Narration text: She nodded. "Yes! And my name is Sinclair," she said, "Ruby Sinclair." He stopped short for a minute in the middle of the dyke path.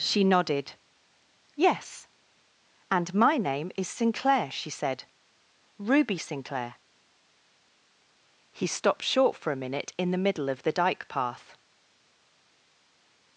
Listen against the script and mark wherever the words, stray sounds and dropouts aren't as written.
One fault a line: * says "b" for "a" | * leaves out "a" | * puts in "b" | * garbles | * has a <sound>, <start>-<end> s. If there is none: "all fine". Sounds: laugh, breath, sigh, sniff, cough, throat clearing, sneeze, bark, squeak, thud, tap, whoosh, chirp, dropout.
all fine